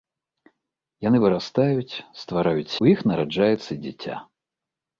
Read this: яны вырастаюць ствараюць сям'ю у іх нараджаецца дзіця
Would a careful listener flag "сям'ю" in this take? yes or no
yes